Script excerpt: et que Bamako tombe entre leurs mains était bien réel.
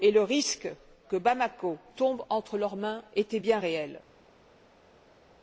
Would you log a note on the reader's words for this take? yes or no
yes